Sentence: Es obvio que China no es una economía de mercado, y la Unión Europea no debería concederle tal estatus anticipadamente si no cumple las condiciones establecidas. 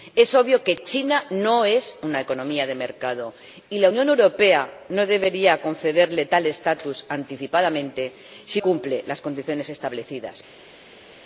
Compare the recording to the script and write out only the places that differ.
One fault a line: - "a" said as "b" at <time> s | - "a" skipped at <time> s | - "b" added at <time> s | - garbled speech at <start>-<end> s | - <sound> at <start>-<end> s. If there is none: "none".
- "no" skipped at 8.6 s